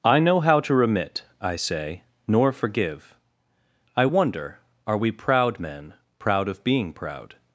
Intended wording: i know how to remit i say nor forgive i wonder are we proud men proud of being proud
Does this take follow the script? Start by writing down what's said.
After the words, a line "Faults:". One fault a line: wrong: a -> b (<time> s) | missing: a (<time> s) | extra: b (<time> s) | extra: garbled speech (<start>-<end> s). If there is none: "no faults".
i know how to remit i say nor forgive i wonder are we proud men proud of being proud
Faults:
no faults